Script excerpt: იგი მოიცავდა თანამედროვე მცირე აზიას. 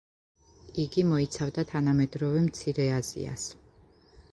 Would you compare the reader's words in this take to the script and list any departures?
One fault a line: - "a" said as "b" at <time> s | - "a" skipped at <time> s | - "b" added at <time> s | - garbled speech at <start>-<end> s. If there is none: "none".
none